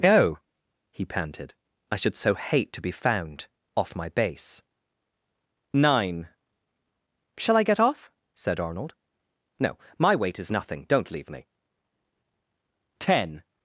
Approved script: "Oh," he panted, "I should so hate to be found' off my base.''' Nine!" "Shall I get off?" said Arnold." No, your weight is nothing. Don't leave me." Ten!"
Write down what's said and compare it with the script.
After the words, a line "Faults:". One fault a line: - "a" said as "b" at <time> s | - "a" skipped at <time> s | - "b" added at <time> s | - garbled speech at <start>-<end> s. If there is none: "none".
"Oh," he panted, "I should so hate to be found' off my base.''' Nine!" "Shall I get off?" said Arnold." No, my weight is nothing. Don't leave me." Ten!"
Faults:
- "your" said as "my" at 10.0 s